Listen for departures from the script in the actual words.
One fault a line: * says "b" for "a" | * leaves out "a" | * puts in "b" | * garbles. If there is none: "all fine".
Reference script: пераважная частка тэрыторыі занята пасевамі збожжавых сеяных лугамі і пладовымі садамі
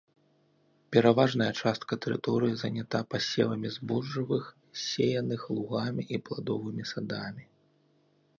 all fine